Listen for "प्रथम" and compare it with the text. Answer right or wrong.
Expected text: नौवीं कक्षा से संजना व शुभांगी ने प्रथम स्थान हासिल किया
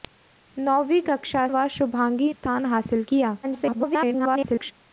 wrong